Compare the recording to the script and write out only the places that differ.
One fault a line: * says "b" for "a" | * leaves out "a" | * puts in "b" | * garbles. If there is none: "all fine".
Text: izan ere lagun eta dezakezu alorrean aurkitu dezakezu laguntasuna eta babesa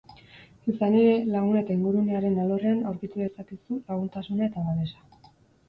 * says "ingurunearen" for "dezakezu"